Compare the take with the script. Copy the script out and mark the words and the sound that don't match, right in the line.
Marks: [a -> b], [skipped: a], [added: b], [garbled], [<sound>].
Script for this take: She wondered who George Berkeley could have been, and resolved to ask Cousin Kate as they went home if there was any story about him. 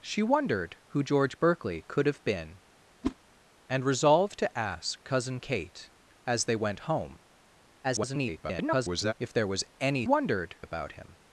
She wondered who George Berkeley could have been, [whoosh] and resolved to ask Cousin Kate as they went home [garbled] if there was any [story -> wondered] about him.